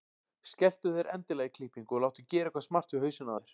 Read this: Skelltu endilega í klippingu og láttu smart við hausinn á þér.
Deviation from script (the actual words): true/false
true